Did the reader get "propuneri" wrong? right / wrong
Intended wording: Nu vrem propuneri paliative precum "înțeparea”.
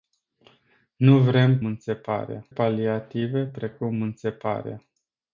wrong